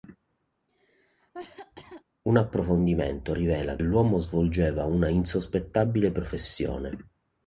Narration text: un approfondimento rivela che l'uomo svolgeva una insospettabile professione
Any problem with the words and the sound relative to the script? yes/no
yes